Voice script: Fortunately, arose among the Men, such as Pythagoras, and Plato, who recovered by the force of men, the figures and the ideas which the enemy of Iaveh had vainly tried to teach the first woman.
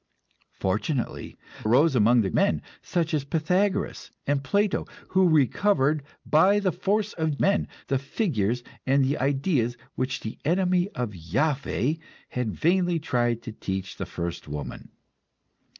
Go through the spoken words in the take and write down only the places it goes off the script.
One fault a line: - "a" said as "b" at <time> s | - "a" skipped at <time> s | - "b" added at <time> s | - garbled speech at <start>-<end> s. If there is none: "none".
none